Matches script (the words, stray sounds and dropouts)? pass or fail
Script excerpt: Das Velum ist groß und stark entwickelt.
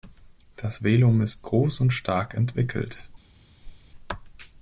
fail